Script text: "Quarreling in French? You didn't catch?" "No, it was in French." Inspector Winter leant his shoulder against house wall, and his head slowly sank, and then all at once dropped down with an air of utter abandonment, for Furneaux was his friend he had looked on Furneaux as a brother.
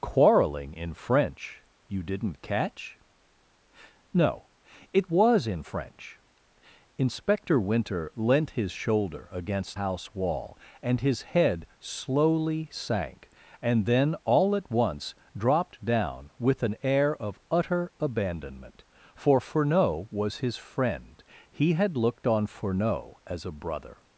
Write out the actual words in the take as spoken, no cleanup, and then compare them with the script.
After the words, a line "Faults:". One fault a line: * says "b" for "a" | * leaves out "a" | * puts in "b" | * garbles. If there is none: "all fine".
"Quarreling in French? You didn't catch?" "No, it was in French." Inspector Winter leant his shoulder against house wall, and his head slowly sank, and then all at once dropped down with an air of utter abandonment, for Furneaux was his friend he had looked on Furneaux as a brother.
Faults:
all fine